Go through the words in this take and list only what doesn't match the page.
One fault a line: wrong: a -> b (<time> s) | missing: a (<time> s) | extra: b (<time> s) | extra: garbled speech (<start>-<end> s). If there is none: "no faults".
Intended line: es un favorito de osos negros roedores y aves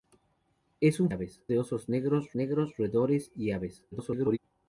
wrong: favorito -> aves (1.1 s)
extra: negros (2.3 s)
extra: garbled speech (3.9-4.4 s)